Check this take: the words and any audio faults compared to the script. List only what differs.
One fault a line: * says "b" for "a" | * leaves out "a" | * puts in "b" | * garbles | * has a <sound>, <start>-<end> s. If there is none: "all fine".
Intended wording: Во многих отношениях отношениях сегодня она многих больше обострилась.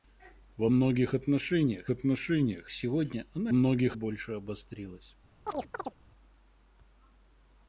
* has a chirp, 5.5-6.0 s